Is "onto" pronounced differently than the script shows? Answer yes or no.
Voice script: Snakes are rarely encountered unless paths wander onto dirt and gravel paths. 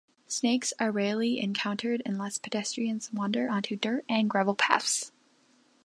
no